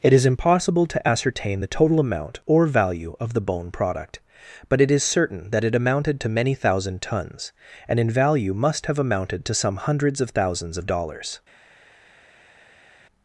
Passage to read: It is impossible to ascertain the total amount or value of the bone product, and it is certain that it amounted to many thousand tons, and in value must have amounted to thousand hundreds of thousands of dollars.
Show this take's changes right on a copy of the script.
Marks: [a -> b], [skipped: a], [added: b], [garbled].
It is impossible to ascertain the total amount or value of the bone product, [and -> but] it is certain that it amounted to many thousand tons, and in value must have amounted to [thousand -> some] hundreds of thousands of dollars.